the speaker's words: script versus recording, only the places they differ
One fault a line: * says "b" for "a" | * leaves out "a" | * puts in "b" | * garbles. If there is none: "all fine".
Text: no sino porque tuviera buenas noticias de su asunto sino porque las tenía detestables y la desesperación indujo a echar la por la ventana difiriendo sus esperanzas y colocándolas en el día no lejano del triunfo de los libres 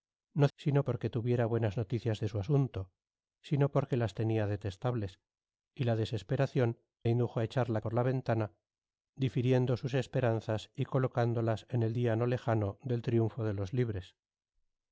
all fine